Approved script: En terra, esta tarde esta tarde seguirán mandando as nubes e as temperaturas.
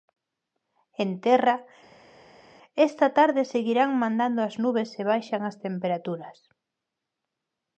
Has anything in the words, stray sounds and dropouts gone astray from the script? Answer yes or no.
yes